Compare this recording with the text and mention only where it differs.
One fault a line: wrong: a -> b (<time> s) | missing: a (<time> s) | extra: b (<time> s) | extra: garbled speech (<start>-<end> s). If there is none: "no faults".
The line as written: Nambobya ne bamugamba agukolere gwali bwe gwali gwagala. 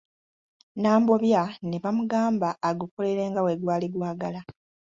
wrong: gwali -> nga (3.3 s)